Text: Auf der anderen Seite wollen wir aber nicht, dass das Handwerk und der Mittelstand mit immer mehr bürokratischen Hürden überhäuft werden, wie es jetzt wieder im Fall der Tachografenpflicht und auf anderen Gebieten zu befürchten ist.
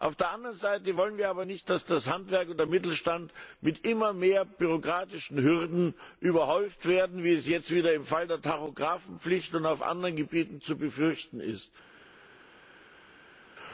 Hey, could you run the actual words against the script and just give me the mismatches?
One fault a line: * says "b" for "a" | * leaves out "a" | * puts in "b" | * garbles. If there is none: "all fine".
all fine